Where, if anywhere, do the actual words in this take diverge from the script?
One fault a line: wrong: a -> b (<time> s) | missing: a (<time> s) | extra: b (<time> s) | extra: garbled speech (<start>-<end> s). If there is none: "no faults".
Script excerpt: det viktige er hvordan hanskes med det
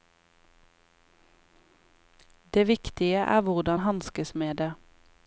no faults